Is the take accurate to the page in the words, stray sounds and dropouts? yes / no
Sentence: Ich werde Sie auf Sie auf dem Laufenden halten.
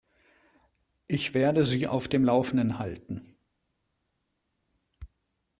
no